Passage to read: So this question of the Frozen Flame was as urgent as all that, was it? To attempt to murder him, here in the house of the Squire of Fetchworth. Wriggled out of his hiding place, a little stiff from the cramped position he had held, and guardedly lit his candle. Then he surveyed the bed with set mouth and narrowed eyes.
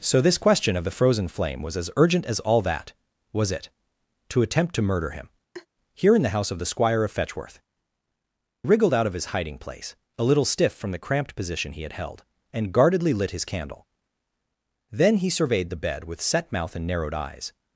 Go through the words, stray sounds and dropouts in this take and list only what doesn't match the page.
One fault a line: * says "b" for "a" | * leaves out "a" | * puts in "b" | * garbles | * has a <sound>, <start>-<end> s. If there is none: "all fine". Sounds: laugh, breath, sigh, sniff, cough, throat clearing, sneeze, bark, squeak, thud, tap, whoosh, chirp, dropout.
* has a laugh, 5.5-5.7 s